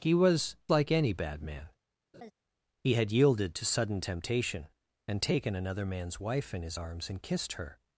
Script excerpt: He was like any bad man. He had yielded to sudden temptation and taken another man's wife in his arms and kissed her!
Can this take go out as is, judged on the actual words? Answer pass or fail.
pass